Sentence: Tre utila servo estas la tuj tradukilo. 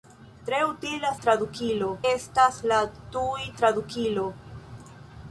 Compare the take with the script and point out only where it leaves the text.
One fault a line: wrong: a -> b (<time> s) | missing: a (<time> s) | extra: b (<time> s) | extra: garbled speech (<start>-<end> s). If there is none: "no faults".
wrong: servo -> tradukilo (1.2 s)